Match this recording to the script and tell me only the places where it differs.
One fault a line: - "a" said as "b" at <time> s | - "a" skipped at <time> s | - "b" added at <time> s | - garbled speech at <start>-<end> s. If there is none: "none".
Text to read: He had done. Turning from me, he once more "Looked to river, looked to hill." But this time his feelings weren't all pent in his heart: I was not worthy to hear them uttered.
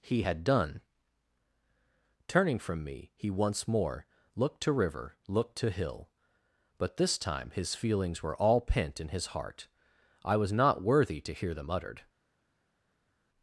- "weren't" said as "were" at 8.2 s